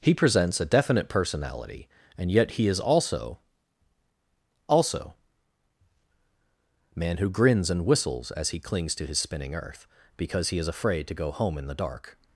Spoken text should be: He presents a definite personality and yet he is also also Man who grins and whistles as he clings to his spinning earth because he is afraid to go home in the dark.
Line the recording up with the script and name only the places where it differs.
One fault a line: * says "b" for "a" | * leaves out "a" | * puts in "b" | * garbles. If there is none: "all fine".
all fine